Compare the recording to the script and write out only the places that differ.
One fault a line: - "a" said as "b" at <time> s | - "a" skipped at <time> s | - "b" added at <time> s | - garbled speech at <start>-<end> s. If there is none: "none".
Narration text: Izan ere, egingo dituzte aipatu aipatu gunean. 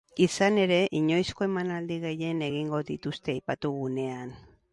- "inoizko emanaldi gehien" added at 1.0 s
- "aipatu" skipped at 3.7 s